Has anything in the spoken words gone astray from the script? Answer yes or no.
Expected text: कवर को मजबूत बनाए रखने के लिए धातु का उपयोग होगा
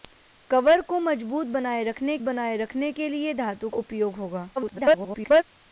yes